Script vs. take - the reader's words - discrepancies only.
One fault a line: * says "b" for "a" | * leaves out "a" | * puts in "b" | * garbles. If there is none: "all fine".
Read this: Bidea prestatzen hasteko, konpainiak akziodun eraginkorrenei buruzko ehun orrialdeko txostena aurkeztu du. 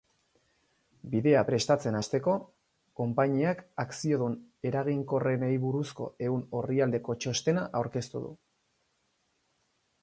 all fine